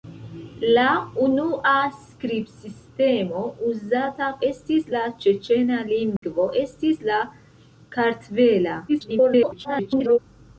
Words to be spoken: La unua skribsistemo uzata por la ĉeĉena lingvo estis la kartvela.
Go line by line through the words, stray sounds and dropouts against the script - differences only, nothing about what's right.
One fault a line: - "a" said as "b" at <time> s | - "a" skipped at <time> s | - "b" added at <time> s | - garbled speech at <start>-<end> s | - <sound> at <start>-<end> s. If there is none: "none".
- "por" said as "estis" at 4.5 s
- dropout at 6.2-6.2 s
- garbled speech at 8.9-10.2 s